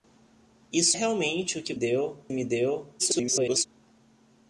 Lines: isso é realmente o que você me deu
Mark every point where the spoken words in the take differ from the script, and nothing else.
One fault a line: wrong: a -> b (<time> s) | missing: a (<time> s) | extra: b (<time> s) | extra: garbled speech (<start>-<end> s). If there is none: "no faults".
missing: é (1.0 s)
wrong: você -> deu (1.7 s)
extra: garbled speech (3.0-3.7 s)